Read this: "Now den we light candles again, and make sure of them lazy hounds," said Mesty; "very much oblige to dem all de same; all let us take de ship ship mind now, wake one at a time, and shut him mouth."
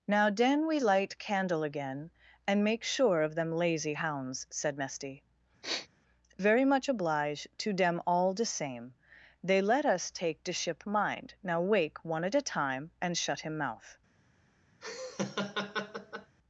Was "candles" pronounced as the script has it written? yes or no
no